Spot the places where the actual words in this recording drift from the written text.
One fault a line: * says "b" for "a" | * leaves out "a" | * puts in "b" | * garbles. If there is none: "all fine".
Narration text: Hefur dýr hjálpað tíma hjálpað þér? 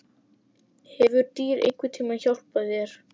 * says "einhvern" for "hjálpað"